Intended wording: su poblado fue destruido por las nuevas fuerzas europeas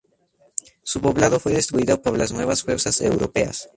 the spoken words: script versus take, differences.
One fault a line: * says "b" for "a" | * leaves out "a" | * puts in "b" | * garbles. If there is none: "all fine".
all fine